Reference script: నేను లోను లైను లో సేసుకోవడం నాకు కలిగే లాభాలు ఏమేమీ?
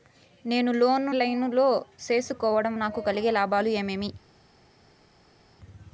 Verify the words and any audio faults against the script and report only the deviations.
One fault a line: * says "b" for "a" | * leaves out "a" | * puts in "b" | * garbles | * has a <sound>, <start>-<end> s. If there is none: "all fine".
all fine